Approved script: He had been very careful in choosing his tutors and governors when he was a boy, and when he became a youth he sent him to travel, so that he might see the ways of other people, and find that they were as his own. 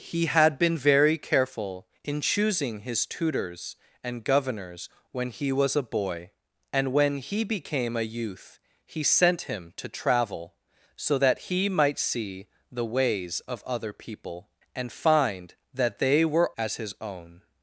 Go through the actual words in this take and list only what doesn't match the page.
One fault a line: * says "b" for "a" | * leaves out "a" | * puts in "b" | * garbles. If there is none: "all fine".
all fine